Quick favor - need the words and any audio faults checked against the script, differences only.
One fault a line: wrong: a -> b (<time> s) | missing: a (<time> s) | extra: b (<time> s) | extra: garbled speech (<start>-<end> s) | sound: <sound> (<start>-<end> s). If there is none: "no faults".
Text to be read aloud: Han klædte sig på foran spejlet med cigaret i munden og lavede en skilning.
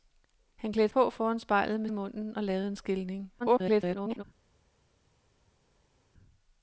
missing: sig (0.9 s)
missing: cigaret (1.9 s)
extra: garbled speech (3.4-4.2 s)